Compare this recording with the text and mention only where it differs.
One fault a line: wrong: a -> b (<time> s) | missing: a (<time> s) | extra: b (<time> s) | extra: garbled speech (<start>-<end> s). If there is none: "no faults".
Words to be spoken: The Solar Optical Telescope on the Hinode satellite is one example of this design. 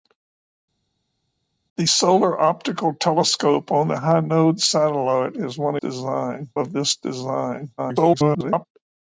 wrong: example -> design (5.7 s)
extra: garbled speech (7.8-8.7 s)